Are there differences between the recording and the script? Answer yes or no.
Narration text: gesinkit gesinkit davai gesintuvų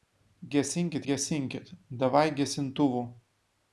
no